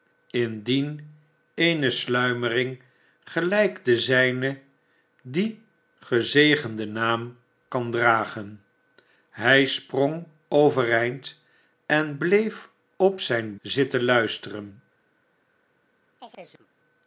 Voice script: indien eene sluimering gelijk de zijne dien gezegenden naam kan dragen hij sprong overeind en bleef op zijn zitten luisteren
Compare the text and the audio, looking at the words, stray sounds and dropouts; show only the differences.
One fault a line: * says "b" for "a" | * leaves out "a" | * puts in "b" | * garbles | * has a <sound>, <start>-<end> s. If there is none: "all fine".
* has a chirp, 16.2-16.7 s